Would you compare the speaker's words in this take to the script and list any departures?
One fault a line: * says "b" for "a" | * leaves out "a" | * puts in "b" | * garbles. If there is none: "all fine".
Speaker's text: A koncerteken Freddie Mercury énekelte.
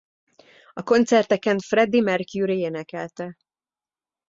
all fine